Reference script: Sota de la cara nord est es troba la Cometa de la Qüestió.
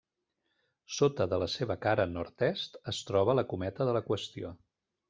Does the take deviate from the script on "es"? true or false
false